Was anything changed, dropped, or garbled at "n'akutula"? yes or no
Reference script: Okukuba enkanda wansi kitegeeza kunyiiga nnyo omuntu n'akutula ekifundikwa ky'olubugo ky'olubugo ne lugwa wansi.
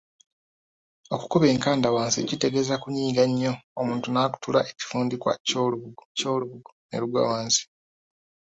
no